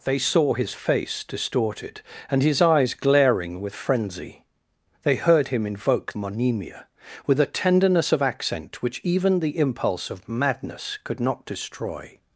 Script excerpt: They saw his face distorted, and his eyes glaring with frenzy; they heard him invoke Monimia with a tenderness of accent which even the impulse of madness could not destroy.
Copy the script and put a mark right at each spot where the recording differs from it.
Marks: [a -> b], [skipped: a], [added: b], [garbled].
They saw his face distorted, and his eyes glaring with frenzy; they heard him invoke Monimia with a tenderness of accent which even the impulse of madness could not destroy.